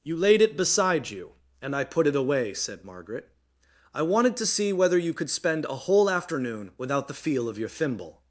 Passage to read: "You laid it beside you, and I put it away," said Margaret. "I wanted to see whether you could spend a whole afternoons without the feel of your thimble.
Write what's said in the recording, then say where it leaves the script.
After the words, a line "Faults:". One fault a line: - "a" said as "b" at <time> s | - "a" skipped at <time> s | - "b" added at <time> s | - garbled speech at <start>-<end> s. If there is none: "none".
"You laid it beside you, and I put it away," said Margaret. "I wanted to see whether you could spend a whole afternoon without the feel of your thimble.
Faults:
- "afternoons" said as "afternoon" at 6.1 s